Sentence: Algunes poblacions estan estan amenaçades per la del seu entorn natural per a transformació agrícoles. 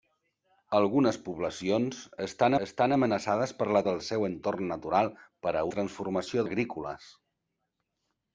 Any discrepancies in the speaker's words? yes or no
no